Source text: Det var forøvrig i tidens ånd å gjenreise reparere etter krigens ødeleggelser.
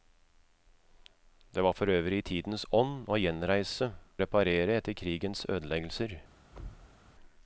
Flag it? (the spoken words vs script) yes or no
no